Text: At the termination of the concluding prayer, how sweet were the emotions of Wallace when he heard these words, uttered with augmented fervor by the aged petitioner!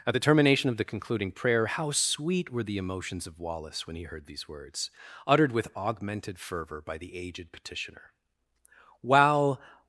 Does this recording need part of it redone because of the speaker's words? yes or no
yes